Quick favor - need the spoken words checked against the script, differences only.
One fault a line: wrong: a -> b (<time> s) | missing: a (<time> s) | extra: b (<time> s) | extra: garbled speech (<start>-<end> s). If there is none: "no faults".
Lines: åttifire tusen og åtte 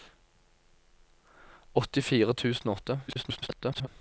extra: garbled speech (3.1-3.9 s)